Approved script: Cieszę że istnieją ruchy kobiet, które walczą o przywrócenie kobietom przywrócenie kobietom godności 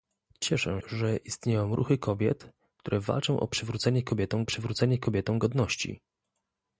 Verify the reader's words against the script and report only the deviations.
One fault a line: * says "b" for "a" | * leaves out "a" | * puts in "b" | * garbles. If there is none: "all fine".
all fine